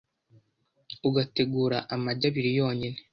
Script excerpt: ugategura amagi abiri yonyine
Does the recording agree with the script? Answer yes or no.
yes